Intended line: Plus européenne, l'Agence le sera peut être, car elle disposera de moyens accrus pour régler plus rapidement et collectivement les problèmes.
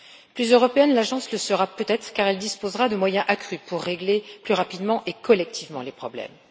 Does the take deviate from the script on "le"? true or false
false